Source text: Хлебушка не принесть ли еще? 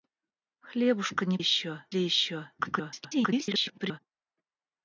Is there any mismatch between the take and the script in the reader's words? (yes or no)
yes